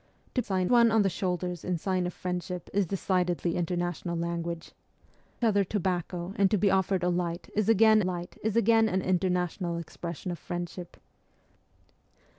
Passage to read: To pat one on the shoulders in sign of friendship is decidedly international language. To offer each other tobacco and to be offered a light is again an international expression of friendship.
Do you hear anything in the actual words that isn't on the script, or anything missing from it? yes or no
yes